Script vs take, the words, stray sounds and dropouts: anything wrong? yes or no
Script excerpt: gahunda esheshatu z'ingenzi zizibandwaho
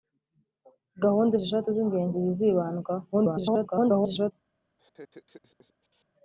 yes